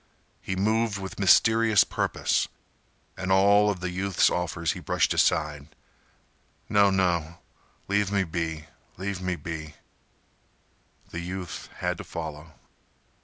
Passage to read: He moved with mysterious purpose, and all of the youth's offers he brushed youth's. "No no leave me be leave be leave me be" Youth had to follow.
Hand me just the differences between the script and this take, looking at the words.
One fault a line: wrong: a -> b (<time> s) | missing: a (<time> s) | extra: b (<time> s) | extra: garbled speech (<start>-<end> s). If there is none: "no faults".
wrong: youth's -> aside (5.1 s)
missing: be leave (9.2 s)
extra: The (11.1 s)